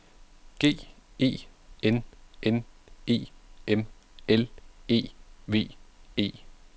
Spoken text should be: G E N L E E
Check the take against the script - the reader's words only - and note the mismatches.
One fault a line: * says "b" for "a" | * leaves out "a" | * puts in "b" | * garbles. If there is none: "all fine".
* puts in "N E M"
* puts in "V"